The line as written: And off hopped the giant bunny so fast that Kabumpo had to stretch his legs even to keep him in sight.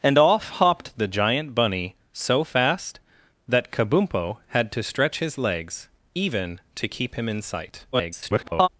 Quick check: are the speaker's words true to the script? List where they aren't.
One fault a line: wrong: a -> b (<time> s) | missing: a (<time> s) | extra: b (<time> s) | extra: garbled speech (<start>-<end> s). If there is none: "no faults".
extra: garbled speech (7.9-8.7 s)